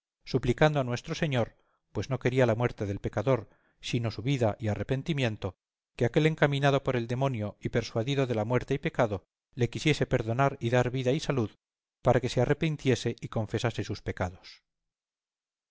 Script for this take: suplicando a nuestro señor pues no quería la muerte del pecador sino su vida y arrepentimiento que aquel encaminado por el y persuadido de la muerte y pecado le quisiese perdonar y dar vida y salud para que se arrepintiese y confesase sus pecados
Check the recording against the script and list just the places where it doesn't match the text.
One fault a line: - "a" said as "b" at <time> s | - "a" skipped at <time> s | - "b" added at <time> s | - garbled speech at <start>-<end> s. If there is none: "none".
- "demonio" added at 7.1 s